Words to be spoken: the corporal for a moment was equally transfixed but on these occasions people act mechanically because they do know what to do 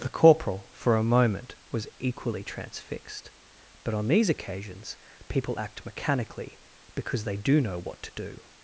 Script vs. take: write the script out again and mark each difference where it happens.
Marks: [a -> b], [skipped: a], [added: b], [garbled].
the corporal for a moment was equally transfixed but on these occasions people act mechanically because they do know what to do